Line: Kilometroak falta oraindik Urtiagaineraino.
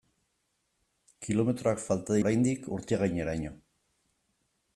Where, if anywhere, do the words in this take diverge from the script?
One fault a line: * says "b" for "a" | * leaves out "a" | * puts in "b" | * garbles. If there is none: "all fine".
all fine